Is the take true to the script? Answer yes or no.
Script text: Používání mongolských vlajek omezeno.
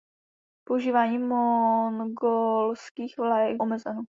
yes